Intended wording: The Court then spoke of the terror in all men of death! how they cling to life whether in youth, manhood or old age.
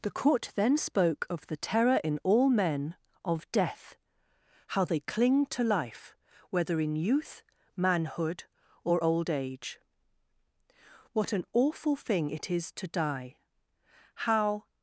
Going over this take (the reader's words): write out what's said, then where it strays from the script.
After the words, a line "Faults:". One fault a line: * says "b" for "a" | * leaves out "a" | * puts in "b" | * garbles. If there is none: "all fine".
The Court then spoke of the terror in all men of death! how they cling to life whether in youth, manhood or old age. What an awful thing it is to die! how
Faults:
* puts in "What an awful thing it is to die how"